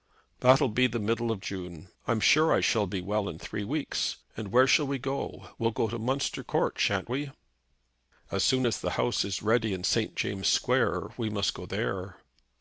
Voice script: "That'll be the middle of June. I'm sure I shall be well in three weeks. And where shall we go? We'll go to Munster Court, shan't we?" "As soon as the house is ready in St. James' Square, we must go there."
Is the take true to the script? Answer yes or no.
yes